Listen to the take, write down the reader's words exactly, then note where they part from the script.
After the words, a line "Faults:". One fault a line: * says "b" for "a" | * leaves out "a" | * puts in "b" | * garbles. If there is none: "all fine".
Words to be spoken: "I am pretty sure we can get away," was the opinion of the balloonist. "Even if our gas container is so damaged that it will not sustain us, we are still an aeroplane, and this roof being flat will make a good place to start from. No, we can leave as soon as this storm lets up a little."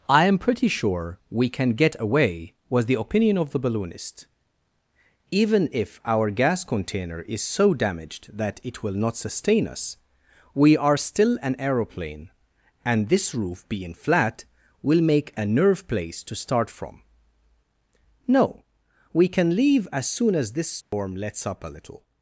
"I am pretty sure we can get away," was the opinion of the balloonist. "Even if our gas container is so damaged that it will not sustain us, we are still an aeroplane, and this roof being flat will make a nerve place to start from. No, we can leave as soon as this storm lets up a little."
Faults:
* says "nerve" for "good"